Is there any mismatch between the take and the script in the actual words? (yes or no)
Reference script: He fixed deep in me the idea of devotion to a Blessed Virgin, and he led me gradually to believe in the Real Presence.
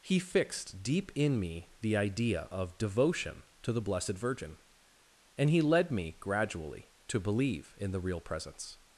yes